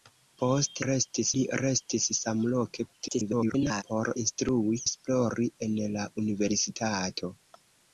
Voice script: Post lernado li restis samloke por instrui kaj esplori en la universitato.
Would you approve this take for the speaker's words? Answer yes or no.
no